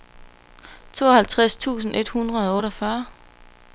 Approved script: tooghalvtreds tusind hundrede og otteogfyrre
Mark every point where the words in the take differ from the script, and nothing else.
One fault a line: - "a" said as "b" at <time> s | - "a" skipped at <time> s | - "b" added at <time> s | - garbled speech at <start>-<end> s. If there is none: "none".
- "et" added at 1.9 s